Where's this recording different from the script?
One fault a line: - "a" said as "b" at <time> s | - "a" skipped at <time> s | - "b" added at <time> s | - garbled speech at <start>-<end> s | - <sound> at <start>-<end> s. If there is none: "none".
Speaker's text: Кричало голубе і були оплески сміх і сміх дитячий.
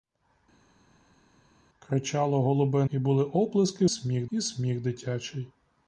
none